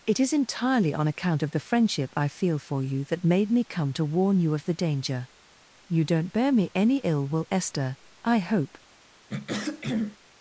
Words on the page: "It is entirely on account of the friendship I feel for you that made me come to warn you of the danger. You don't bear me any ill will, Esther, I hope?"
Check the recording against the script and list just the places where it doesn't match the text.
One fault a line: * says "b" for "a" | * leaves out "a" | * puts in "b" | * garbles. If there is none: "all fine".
all fine